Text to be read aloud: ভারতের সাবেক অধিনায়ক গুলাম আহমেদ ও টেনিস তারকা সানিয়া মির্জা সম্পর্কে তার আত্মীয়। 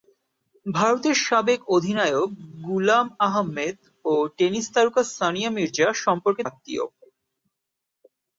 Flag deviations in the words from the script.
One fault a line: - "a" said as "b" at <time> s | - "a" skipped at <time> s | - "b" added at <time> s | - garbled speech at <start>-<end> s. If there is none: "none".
- "তার" skipped at 6.4 s